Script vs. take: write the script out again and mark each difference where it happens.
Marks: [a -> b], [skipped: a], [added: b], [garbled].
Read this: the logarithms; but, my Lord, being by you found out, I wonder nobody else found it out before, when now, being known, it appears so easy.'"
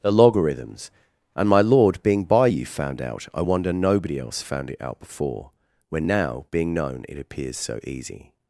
the logarithms; [but, -> and] my Lord, being by you found out, I wonder nobody else found it out before, when now, being known, it appears so easy.'"